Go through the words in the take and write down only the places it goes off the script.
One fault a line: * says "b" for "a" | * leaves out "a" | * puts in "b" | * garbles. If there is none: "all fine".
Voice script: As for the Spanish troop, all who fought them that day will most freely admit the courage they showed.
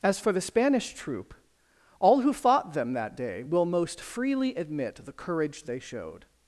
all fine